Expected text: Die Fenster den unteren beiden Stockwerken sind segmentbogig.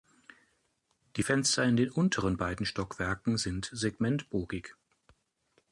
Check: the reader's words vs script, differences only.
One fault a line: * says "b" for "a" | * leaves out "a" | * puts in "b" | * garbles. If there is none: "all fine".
* puts in "in"